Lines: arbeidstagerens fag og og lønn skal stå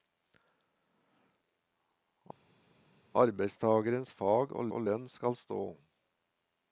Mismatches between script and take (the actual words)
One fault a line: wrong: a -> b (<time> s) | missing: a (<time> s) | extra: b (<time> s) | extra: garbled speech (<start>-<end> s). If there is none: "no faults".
no faults